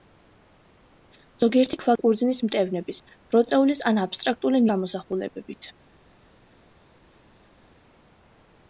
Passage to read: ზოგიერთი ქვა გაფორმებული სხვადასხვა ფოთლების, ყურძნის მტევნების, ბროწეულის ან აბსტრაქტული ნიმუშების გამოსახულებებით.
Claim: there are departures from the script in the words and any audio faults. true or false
true